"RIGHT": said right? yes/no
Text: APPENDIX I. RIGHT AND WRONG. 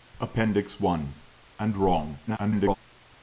no